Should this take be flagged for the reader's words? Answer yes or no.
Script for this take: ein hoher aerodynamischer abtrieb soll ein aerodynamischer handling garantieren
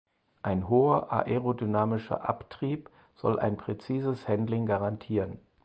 yes